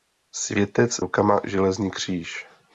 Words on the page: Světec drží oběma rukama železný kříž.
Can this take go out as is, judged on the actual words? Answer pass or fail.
fail